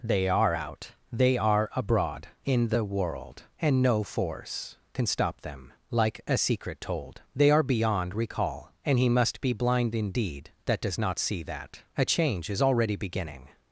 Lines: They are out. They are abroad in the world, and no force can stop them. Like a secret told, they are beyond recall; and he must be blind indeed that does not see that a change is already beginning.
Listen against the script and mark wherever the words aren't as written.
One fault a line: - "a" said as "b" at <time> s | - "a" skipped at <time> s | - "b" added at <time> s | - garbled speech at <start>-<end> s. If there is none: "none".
none